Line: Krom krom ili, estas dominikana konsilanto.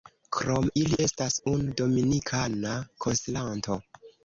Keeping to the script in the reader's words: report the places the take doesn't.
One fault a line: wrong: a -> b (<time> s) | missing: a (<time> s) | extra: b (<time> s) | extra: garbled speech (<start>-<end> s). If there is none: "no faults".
missing: krom (0.6 s)
extra: unu (1.5 s)